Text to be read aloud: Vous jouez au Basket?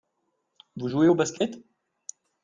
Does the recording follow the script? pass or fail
pass